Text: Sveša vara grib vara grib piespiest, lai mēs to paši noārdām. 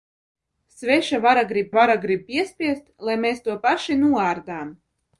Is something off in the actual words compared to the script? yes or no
no